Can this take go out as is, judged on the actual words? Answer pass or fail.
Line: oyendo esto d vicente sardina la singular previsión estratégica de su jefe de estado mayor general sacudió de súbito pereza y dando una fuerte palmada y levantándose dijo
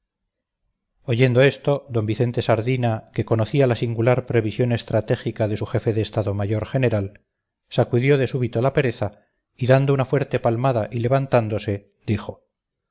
fail